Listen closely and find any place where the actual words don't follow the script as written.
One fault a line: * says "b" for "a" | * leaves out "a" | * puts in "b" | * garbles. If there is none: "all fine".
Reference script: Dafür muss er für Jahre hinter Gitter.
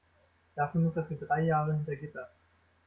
* puts in "drei"